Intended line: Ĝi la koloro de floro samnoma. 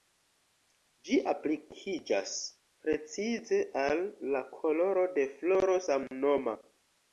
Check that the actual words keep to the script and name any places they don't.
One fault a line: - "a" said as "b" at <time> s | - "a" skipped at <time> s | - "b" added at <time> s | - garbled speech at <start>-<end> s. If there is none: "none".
- "aplikiĝas precize al" added at 1.3 s